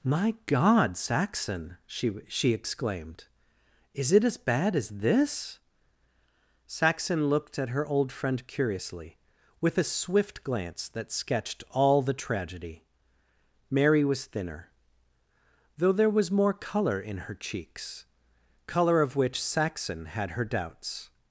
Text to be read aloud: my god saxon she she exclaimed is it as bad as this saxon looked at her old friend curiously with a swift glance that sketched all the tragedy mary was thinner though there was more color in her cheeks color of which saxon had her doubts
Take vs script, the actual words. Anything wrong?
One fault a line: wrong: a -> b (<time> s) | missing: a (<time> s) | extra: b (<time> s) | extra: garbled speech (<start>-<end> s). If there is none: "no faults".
no faults